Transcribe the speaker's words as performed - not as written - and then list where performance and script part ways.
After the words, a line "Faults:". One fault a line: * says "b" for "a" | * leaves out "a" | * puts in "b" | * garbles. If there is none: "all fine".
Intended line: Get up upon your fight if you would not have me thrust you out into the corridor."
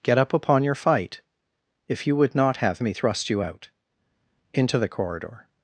Get up upon your fight if you would not have me thrust you out into the corridor."
Faults:
all fine